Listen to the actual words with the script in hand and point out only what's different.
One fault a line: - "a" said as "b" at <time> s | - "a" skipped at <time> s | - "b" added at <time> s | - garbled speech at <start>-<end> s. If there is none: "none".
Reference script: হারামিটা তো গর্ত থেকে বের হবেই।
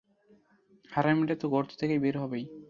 none